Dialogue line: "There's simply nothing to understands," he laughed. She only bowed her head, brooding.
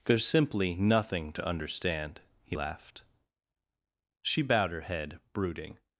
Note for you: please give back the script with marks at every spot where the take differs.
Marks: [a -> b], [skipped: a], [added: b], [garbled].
"There's simply nothing to [understands," -> understand] he laughed. She [skipped: only] bowed her head, brooding.